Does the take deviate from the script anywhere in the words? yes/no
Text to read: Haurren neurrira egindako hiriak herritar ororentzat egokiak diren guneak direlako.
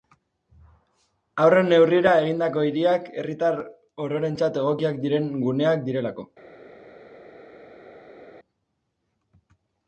no